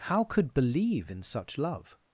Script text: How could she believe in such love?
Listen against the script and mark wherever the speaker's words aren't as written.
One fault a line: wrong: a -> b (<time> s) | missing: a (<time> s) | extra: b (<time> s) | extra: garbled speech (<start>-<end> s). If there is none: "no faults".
missing: she (0.6 s)